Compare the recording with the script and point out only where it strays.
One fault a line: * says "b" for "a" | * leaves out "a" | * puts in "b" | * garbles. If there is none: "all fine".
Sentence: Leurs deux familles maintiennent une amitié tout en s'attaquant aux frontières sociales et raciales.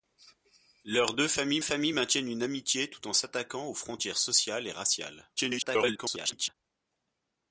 * puts in "familles"
* garbles